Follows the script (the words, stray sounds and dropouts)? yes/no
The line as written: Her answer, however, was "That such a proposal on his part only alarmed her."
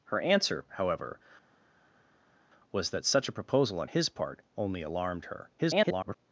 no